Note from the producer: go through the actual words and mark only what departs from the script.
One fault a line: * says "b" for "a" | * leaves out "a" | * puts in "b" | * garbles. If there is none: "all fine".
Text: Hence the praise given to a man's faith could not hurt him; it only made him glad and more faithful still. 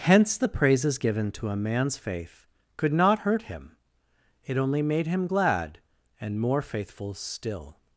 * says "praises" for "praise"